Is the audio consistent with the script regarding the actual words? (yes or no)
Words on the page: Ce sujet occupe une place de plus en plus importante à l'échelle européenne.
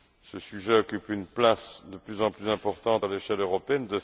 yes